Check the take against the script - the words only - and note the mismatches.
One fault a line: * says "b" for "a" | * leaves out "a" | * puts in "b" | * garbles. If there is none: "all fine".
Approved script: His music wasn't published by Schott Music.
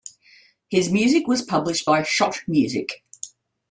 * says "was" for "wasn't"